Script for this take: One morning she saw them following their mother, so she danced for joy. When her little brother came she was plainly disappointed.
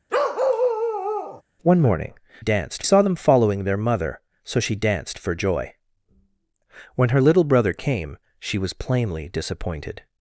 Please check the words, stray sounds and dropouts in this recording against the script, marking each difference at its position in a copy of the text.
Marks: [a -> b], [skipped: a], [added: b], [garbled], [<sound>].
[bark] One morning [she -> danced] saw them following their mother, so she danced for joy. When her little brother came she was plainly disappointed.